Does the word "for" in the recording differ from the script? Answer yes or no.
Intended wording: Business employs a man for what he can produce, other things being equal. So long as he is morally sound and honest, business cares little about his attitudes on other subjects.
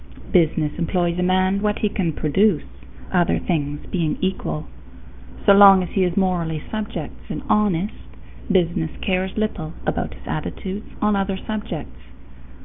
yes